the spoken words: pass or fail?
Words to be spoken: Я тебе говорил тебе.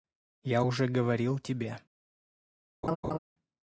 fail